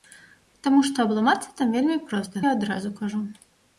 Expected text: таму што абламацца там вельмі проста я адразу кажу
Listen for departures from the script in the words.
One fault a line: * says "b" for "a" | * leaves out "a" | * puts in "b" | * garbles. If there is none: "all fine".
all fine